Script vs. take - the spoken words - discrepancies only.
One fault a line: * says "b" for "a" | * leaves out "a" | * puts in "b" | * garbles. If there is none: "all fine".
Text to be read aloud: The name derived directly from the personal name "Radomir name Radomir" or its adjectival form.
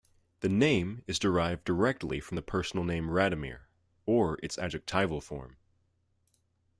* puts in "is"
* leaves out "name Radomir"